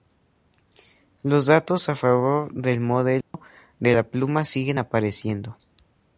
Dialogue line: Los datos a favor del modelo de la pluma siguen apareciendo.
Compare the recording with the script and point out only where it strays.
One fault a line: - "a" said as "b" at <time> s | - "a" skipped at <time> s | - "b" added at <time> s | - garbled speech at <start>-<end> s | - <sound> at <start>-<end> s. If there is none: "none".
- dropout at 3.2-3.3 s